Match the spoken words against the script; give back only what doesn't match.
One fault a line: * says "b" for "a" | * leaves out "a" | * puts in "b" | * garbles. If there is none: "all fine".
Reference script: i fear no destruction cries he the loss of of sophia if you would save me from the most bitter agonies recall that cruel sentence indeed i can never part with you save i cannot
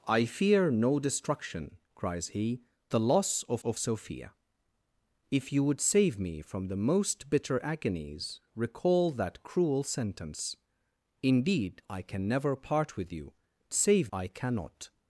all fine